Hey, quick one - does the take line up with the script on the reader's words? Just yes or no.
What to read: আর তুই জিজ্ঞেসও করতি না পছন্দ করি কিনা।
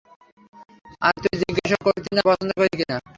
yes